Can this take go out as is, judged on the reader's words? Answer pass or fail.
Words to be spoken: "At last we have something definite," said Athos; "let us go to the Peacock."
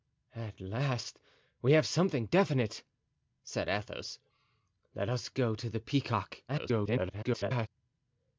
fail